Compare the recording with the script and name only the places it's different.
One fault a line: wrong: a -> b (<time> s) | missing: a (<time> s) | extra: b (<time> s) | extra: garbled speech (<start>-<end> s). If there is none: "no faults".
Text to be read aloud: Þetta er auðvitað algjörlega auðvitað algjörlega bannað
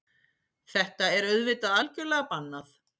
missing: auðvitað algjörlega (2.3 s)